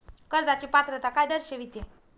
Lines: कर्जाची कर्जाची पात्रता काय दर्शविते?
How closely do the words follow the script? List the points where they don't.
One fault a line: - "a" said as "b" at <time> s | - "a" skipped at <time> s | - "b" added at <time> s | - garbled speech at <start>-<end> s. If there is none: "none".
- "कर्जाची" skipped at 0.7 s